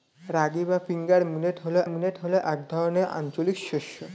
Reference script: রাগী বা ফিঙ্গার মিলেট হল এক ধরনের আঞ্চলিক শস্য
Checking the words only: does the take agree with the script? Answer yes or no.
no